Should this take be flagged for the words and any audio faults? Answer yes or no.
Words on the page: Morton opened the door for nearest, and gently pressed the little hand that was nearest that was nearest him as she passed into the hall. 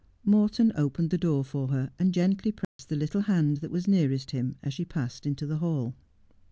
yes